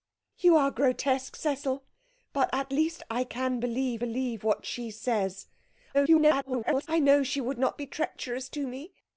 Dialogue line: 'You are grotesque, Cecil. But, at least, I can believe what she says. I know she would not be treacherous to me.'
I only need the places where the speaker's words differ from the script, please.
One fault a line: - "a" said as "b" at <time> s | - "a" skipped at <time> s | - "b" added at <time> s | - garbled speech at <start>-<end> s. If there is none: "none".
- "believe" added at 4.0 s
- garbled speech at 5.9-6.9 s